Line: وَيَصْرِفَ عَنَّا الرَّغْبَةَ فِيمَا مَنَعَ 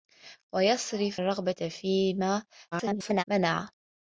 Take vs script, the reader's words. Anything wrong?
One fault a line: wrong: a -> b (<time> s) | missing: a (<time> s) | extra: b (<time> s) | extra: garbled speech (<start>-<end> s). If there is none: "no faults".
missing: عَنَّا (1.2 s)
extra: garbled speech (2.7-3.2 s)